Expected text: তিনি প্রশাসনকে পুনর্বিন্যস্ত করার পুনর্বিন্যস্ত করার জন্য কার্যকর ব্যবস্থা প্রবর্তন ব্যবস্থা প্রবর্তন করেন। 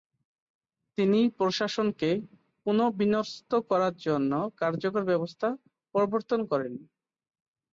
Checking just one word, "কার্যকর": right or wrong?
right